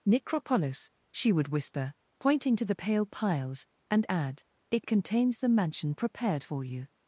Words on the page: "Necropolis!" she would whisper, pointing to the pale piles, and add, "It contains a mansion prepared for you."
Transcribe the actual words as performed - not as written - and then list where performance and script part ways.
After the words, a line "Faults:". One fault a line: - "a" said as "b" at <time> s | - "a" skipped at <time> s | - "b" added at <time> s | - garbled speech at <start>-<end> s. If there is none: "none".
"Necropolis!" she would whisper, pointing to the pale piles, and add, "It contains the mansion prepared for you."
Faults:
- "a" said as "the" at 5.4 s